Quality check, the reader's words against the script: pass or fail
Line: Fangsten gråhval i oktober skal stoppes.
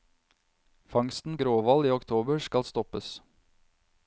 pass